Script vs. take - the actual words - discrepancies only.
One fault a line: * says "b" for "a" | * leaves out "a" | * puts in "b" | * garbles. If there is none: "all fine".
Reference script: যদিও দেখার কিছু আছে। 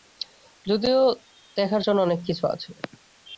* puts in "জন্য অনেক"